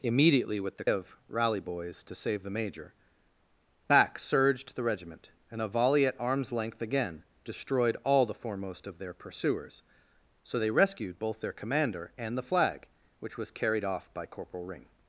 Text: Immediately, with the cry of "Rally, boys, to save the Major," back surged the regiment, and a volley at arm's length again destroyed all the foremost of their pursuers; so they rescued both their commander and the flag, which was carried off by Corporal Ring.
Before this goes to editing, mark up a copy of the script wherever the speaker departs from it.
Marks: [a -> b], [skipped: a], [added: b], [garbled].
Immediately, with the [skipped: cry] of "Rally, boys, to save the Major," back surged the regiment, and a volley at arm's length again destroyed all the foremost of their pursuers; so they rescued both their commander and the flag, which was carried off by Corporal Ring.